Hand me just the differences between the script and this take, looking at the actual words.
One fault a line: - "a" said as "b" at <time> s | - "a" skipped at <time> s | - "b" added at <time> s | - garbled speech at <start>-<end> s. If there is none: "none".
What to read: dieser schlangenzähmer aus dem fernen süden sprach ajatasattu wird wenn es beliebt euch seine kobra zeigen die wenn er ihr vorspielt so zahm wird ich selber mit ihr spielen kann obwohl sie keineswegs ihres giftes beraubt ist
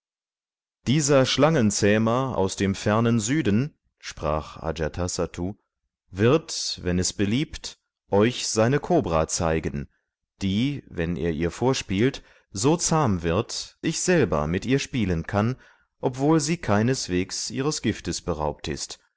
none